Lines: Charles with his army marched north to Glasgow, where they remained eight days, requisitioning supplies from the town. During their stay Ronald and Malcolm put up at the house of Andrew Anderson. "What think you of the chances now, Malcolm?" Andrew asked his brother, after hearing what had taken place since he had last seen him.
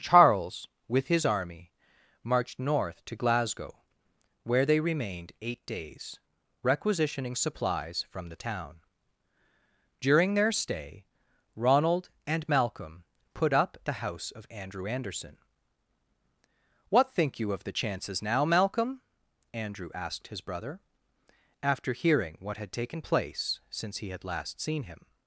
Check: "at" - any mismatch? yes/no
yes